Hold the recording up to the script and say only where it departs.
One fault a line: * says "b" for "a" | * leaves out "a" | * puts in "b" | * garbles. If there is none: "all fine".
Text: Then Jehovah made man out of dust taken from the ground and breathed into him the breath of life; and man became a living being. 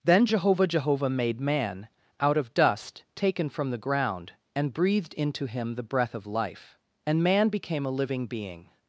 * puts in "Jehovah"